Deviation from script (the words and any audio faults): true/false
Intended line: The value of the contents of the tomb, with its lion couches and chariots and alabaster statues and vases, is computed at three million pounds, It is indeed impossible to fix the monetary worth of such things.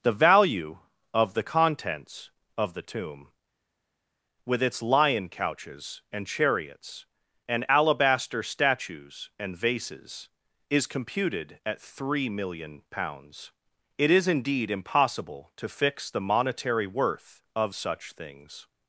false